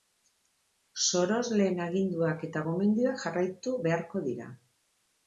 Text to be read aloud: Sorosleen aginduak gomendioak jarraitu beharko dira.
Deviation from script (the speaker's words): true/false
true